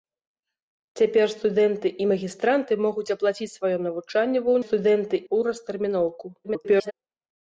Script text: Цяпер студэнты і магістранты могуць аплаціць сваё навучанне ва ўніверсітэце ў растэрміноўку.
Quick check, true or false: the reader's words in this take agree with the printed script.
false